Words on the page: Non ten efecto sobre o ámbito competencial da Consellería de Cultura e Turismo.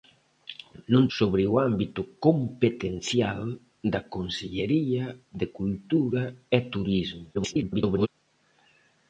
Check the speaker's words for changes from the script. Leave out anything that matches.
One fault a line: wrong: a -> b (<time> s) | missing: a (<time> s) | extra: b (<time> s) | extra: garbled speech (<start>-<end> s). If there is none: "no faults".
missing: ten efecto (1.0 s)
extra: garbled speech (7.3-8.1 s)